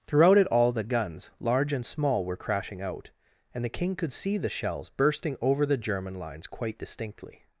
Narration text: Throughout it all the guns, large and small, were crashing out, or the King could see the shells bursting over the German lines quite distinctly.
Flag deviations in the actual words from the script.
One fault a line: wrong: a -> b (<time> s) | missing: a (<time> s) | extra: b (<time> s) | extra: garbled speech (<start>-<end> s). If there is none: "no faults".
wrong: or -> and (3.5 s)